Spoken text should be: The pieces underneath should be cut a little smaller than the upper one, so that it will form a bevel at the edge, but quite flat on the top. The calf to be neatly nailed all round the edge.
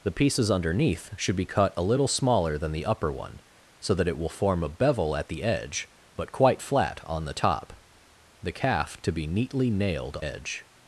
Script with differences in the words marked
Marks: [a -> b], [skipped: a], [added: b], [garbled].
The pieces underneath should be cut a little smaller than the upper one, so that it will form a bevel at the edge, but quite flat on the top. The calf to be neatly nailed [skipped: all round the] edge.